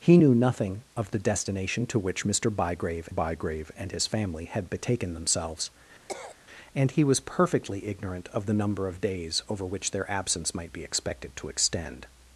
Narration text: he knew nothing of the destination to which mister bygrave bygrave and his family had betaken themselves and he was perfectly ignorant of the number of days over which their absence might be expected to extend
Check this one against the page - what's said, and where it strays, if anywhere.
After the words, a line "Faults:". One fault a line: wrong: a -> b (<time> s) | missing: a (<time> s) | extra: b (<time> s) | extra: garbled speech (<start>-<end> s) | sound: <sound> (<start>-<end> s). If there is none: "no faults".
he knew nothing of the destination to which mister bygrave bygrave and his family had betaken themselves and he was perfectly ignorant of the number of days over which their absence might be expected to extend
Faults:
sound: cough (6.1-6.4 s)